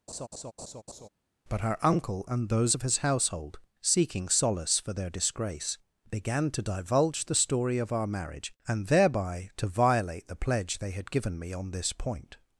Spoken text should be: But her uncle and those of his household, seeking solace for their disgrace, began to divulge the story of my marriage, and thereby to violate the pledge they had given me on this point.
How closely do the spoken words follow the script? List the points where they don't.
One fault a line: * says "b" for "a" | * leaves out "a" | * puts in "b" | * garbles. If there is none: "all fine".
* says "our" for "my"